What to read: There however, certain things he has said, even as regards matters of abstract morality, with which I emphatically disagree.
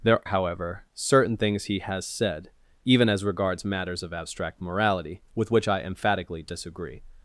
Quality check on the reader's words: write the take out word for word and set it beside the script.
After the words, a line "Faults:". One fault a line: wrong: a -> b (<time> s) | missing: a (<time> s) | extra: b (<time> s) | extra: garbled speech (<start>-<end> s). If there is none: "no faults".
There however, certain things he has said, even as regards matters of abstract morality, with which I emphatically disagree.
Faults:
no faults